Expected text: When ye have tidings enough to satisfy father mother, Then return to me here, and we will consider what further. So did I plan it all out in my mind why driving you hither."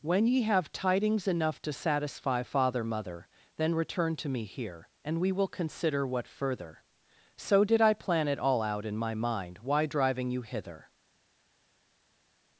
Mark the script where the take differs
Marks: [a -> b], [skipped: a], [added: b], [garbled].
When ye have tidings enough to satisfy father mother, Then return to me here, and we will consider what further. So did I plan it all out in my mind why driving you hither."